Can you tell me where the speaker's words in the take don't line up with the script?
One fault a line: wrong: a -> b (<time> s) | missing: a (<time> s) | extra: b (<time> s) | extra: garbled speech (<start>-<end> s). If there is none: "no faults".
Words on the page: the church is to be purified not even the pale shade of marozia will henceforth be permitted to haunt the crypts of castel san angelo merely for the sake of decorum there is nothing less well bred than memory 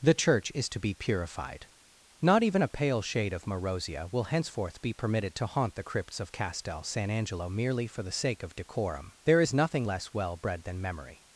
wrong: the -> a (2.6 s)